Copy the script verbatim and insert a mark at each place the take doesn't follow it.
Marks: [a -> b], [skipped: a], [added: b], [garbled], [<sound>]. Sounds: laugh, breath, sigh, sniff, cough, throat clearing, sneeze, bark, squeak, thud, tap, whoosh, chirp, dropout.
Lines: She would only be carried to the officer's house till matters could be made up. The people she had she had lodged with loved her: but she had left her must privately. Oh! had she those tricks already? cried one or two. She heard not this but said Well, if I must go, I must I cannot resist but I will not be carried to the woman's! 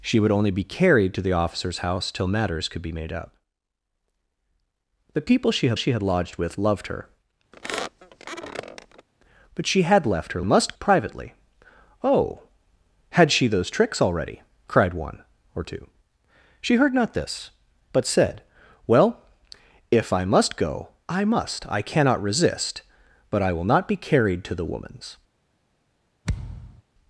She would only be carried to the officer's house till matters could be made up. The people she had she had lodged with loved her: [squeak] but she had left her must privately. Oh! had she those tricks already? cried one or two. She heard not this but said Well, if I must go, I must I cannot resist but I will not be carried to the woman's! [thud]